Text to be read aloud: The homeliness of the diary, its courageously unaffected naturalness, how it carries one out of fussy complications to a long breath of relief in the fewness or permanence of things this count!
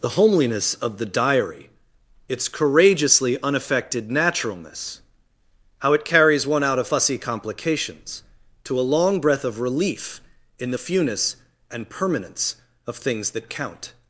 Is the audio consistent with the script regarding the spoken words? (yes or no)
no